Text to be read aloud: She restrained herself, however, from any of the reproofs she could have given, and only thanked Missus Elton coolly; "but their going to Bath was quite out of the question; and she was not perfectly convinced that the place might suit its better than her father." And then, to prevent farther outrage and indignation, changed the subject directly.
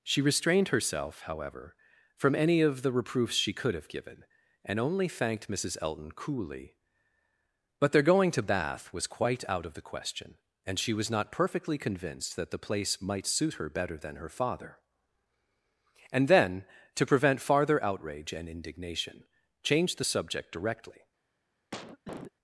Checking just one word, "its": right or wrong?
wrong